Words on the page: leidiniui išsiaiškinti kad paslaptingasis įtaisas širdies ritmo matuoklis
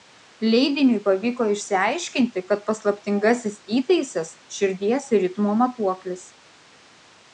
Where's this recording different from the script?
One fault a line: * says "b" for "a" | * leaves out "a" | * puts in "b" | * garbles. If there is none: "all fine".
* puts in "pavyko"